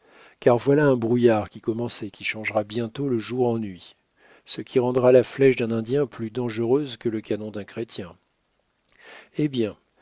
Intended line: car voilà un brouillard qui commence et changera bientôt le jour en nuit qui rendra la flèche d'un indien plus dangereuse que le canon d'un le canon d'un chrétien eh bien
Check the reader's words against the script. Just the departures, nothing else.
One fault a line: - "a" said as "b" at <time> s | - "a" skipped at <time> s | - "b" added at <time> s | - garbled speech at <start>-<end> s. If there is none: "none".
- "qui" added at 2.1 s
- "ce" added at 4.5 s
- "le canon d'un" skipped at 7.6 s